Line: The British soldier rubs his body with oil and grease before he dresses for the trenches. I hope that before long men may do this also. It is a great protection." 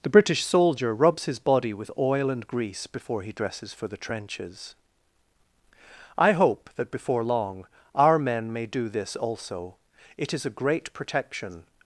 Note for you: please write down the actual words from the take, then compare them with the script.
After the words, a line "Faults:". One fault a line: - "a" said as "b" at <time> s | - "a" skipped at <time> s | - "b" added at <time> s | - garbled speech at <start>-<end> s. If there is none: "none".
The British soldier rubs his body with oil and grease before he dresses for the trenches. I hope that before long our men may do this also. It is a great protection."
Faults:
- "our" added at 7.9 s